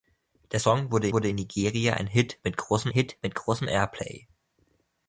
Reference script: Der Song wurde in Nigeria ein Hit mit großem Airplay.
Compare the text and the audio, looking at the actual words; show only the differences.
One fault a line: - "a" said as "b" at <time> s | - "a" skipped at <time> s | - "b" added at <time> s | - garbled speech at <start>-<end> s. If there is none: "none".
- "wurde" added at 1.1 s
- "Hit mit großem" added at 2.9 s